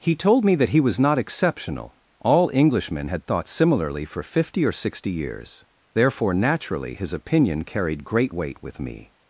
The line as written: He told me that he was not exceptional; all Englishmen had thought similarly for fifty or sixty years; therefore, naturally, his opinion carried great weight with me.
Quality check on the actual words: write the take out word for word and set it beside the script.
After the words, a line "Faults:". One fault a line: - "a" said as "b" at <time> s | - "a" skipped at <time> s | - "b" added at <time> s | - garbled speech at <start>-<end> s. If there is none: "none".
He told me that he was not exceptional; all Englishmen had thought similarly for fifty or sixty years; therefore, naturally, his opinion carried great weight with me.
Faults:
none